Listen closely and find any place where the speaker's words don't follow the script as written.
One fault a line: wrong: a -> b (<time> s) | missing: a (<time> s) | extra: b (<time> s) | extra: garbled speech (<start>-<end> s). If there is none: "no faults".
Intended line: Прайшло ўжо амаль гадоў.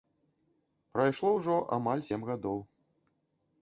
extra: сем (2.1 s)